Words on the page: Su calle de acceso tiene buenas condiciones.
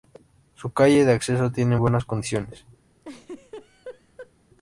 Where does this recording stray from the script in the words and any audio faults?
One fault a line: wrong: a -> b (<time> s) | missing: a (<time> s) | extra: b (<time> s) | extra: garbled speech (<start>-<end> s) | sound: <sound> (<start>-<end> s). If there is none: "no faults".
sound: laugh (3.0-4.3 s)